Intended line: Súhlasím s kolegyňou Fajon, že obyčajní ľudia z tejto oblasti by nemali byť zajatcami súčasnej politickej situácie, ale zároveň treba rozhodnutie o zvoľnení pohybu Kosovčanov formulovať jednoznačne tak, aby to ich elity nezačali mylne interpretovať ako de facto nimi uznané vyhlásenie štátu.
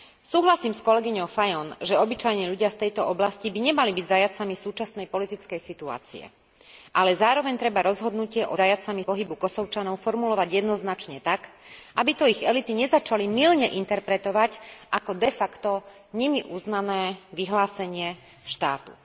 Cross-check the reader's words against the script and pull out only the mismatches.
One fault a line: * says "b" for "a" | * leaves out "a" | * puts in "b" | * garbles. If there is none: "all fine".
* says "zajatcami" for "zvoľnení"